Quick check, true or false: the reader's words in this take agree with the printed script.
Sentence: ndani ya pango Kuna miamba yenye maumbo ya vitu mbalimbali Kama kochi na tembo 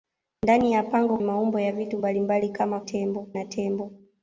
false